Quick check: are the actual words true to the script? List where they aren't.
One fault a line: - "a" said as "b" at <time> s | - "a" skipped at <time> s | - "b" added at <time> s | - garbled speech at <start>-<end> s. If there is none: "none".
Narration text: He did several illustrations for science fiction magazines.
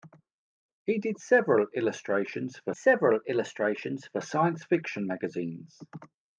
- "several illustrations for" added at 2.7 s